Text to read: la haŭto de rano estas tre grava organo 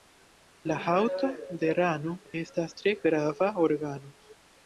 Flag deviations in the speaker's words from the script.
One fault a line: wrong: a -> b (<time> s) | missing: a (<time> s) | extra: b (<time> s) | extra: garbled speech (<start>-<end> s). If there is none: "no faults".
no faults